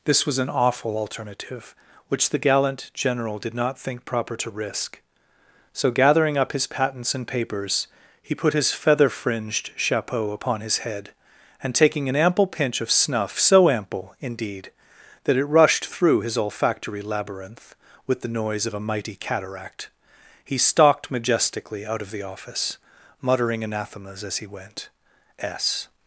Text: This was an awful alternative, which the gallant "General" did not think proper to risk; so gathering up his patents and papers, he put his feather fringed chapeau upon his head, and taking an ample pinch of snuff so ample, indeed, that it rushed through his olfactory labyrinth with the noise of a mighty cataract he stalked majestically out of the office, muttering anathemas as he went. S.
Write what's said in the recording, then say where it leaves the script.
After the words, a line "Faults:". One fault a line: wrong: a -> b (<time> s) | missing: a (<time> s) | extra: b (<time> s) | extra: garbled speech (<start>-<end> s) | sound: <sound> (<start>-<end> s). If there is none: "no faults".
This was an awful alternative, which the gallant "General" did not think proper to risk; so gathering up his patents and papers, he put his feather fringed chapeau upon his head, and taking an ample pinch of snuff so ample, indeed, that it rushed through his olfactory labyrinth with the noise of a mighty cataract he stalked majestically out of the office, muttering anathemas as he went. S.
Faults:
no faults